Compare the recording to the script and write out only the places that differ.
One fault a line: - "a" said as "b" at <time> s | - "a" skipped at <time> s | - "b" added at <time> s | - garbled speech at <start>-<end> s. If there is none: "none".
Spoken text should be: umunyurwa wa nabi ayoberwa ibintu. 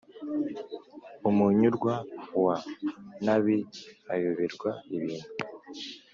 none